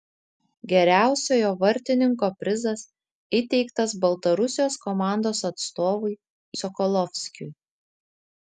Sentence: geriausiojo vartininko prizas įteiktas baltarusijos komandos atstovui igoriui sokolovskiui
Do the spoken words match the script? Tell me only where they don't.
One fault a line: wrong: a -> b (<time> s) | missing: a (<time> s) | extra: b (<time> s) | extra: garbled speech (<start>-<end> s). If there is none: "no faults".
missing: igoriui (6.2 s)